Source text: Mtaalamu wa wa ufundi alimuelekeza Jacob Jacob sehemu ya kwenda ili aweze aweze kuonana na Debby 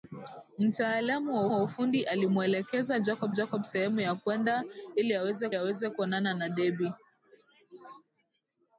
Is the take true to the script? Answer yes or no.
yes